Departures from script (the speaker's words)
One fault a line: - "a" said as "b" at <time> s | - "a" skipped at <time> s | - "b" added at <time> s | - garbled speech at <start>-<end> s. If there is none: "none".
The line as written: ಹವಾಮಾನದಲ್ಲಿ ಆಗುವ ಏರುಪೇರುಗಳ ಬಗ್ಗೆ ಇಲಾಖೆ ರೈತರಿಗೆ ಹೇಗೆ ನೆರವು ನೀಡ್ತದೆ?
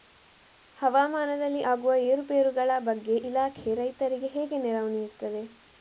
none